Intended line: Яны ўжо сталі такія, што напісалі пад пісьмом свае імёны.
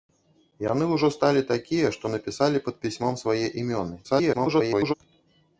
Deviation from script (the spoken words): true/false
true